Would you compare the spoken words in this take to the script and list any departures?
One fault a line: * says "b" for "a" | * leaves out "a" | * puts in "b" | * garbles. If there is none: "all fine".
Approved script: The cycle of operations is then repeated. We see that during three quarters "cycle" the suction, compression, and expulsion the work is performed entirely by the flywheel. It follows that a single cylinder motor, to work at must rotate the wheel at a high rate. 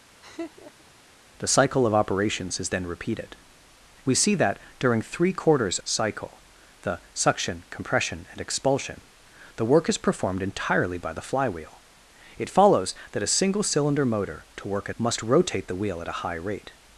all fine